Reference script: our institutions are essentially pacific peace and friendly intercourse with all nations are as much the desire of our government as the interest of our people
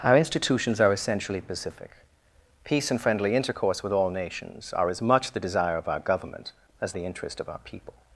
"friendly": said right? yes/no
yes